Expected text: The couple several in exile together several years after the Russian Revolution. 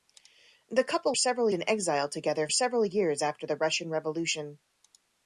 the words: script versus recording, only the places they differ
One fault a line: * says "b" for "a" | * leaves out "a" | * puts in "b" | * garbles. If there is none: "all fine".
all fine